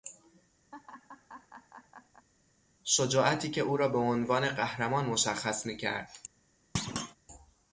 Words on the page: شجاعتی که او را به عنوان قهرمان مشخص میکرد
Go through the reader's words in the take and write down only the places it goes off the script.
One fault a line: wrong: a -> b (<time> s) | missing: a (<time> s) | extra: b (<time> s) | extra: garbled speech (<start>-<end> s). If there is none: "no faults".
no faults